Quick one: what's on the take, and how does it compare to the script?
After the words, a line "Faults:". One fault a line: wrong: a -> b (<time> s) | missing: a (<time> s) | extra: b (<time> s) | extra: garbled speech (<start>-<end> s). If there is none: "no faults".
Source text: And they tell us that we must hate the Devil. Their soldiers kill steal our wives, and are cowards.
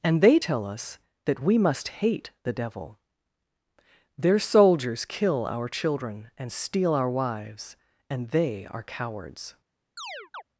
And they tell us that we must hate the Devil. Their soldiers kill our children and steal our wives, and they are cowards.
Faults:
extra: our children and (5.5 s)
extra: they (8.3 s)